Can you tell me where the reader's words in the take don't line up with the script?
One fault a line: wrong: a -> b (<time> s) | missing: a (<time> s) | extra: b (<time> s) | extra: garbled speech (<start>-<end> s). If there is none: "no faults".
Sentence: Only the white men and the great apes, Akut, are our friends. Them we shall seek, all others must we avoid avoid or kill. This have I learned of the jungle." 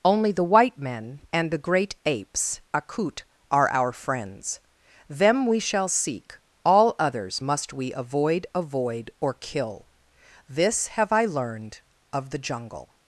no faults